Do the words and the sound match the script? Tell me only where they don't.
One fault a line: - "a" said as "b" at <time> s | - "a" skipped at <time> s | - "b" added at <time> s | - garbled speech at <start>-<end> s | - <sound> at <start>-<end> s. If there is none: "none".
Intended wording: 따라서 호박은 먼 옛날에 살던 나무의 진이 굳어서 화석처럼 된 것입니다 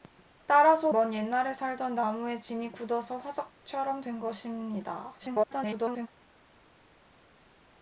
- "호박은" skipped at 0.9 s
- garbled speech at 5.2-6.1 s